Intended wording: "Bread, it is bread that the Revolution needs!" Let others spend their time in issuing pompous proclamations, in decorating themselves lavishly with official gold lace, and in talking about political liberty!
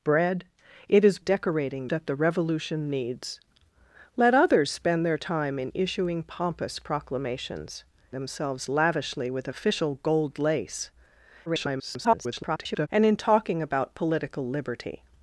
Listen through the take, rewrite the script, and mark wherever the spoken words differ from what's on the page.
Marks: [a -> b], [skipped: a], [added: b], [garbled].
"Bread, it is [bread -> decorating] that the Revolution needs!" Let others spend their time in issuing pompous proclamations, [skipped: in decorating] themselves lavishly with official gold lace, [garbled] and in talking about political liberty!